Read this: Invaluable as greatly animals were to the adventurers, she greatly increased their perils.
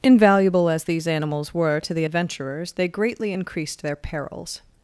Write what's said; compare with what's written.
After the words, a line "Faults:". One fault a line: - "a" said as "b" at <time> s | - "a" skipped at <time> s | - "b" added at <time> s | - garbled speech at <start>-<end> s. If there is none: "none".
Invaluable as these animals were to the adventurers, they greatly increased their perils.
Faults:
- "greatly" said as "these" at 0.8 s
- "she" said as "they" at 2.7 s